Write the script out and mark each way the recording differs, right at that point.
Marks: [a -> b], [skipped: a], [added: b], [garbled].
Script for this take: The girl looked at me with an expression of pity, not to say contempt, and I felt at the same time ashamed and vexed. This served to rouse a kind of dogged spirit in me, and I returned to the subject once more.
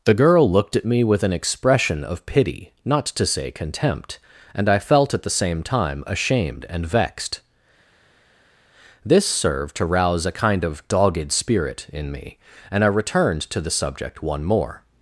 The girl looked at me with an expression of pity, not to say contempt, and I felt at the same time ashamed and vexed. This served to rouse a kind of dogged spirit in me, and I returned to the subject [once -> one] more.